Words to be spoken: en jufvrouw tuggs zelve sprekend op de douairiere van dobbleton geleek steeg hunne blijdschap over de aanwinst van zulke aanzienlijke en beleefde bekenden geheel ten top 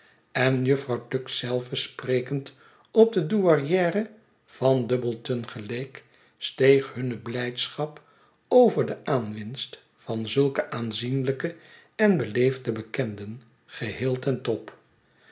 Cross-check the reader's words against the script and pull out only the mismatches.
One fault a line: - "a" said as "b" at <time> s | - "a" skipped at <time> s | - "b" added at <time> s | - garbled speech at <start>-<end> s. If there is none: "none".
none